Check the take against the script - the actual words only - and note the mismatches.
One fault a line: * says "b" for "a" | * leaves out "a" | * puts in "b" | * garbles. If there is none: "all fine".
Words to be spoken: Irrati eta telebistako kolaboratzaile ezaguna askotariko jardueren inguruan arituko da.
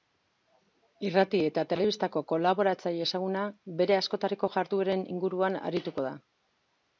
* puts in "bere"